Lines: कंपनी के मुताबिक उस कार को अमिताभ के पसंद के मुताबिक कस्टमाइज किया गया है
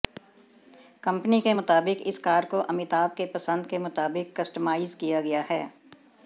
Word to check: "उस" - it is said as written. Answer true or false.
false